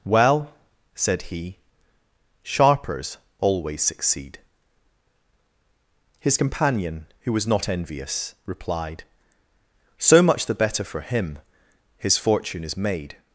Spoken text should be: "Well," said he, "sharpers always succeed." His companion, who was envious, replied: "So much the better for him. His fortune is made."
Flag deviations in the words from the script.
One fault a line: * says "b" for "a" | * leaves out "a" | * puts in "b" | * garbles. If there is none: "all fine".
* puts in "not"